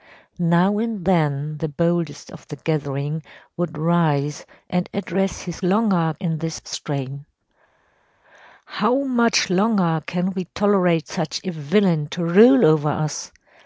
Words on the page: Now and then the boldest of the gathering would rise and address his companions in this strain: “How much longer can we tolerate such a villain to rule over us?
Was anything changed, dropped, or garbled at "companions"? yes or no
yes